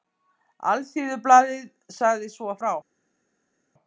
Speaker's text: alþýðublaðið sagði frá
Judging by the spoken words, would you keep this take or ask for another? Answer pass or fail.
fail